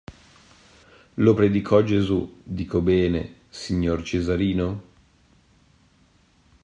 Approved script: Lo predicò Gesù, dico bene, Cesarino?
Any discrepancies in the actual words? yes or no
yes